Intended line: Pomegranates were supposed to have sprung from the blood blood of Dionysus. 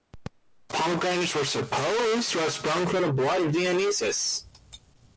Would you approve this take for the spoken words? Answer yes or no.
no